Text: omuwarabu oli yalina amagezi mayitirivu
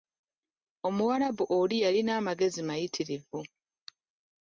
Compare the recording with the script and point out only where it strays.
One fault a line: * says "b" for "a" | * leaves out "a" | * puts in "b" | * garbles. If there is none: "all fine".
all fine